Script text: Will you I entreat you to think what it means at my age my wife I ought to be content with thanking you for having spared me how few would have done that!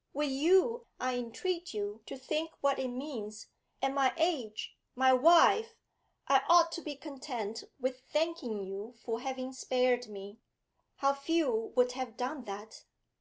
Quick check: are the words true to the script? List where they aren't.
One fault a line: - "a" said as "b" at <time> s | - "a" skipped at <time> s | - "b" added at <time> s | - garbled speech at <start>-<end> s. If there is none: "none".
none